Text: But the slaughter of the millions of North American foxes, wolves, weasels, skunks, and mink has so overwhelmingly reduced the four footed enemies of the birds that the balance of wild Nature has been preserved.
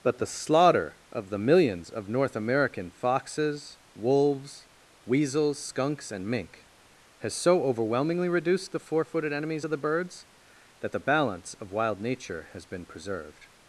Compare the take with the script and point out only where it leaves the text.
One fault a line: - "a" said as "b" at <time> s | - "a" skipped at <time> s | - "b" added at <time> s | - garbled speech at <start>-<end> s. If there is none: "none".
none